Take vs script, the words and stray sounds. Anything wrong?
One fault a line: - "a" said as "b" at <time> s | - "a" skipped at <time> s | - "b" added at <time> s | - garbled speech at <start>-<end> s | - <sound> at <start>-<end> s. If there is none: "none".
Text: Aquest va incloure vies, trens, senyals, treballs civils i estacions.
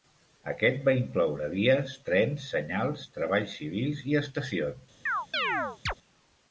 - chirp at 5.1-5.9 s